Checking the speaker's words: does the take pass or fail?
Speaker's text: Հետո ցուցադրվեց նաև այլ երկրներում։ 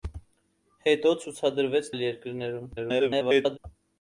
fail